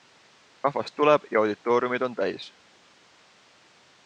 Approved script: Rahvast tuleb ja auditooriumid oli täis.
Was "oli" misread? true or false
true